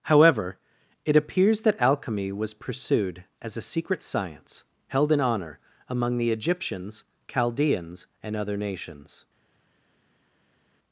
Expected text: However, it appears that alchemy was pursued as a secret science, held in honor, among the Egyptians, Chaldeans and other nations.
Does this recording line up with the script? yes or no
yes